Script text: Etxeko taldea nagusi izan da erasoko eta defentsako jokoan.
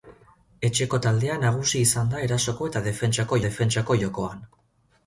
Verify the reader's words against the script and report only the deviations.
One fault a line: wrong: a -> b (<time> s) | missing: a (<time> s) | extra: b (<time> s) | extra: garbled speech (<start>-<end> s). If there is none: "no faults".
extra: defentsako (3.5 s)